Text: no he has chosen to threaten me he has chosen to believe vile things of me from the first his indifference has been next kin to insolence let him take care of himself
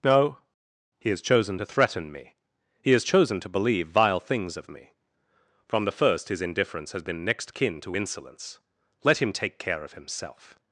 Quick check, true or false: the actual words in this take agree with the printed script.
true